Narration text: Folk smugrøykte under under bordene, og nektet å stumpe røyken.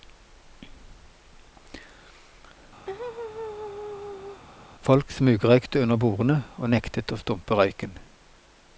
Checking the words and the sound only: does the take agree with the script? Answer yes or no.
no